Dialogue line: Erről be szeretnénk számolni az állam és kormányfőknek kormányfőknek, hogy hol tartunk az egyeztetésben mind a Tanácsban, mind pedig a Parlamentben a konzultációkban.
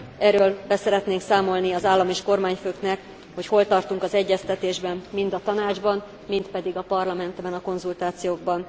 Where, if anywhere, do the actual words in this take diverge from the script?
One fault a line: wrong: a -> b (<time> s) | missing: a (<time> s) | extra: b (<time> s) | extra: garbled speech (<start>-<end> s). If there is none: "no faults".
missing: kormányfőknek (3.0 s)